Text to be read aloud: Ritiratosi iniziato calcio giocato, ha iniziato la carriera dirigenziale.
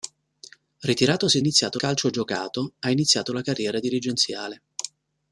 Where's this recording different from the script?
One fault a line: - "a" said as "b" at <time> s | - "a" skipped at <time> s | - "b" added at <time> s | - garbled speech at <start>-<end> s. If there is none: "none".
none